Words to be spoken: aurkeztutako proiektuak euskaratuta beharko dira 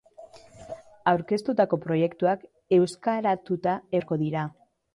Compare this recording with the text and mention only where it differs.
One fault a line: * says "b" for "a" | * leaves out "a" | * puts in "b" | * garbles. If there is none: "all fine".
all fine